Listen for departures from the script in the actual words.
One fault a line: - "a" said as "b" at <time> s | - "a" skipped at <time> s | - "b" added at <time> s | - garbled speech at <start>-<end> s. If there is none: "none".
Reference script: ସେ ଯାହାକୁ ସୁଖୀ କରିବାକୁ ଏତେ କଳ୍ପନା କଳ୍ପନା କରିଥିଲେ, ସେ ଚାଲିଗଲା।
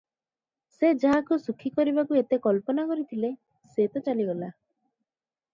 - "କଳ୍ପନା" skipped at 2.8 s
- "ତ" added at 3.9 s